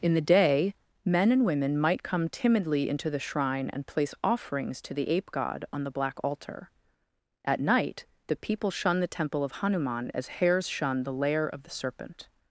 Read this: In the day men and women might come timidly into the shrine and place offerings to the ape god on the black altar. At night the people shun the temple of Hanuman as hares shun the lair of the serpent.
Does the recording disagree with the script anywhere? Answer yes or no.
no